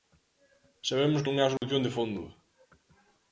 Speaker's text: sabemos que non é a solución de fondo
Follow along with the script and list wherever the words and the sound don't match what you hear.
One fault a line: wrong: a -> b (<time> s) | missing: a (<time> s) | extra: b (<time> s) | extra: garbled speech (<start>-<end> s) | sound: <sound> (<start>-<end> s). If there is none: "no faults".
missing: que (1.2 s)
sound: dropout (1.6-1.6 s)